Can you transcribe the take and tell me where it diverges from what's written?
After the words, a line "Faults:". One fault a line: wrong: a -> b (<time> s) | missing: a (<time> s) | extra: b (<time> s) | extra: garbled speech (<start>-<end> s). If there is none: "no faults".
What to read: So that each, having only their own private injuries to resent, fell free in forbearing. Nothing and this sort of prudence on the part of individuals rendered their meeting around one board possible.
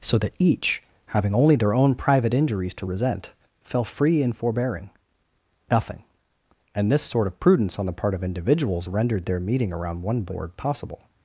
So that each, having only their own private injuries to resent, fell free in forbearing. Nothing and this sort of prudence on the part of individuals rendered their meeting around one board possible.
Faults:
no faults